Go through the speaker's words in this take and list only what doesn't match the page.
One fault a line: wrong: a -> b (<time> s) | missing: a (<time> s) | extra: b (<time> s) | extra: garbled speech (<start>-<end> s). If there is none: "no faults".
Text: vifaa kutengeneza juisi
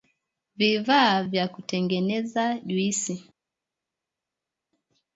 extra: vya (1.2 s)